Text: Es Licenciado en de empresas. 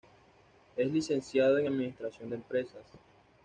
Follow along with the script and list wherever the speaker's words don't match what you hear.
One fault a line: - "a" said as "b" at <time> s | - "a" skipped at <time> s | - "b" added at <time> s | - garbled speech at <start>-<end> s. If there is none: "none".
- "administración" added at 1.7 s